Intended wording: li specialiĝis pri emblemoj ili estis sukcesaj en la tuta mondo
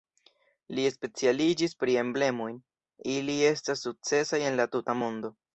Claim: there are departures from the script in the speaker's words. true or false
true